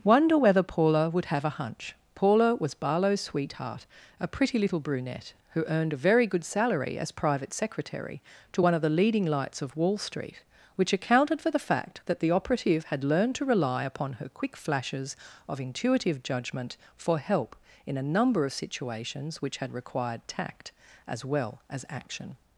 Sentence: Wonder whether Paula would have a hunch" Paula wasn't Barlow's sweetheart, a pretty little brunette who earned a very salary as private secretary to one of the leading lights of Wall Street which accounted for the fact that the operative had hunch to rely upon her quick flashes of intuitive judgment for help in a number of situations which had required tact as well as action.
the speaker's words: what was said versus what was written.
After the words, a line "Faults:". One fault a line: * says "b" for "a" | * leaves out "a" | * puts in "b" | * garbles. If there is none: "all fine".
Wonder whether Paula would have a hunch" Paula was Barlow's sweetheart, a pretty little brunette who earned a very good salary as private secretary to one of the leading lights of Wall Street which accounted for the fact that the operative had learned to rely upon her quick flashes of intuitive judgment for help in a number of situations which had required tact as well as action.
Faults:
* says "was" for "wasn't"
* puts in "good"
* says "learned" for "hunch"